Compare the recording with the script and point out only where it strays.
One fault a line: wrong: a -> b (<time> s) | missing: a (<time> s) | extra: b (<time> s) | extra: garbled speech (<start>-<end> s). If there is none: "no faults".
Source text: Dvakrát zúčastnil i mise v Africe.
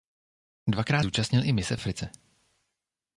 no faults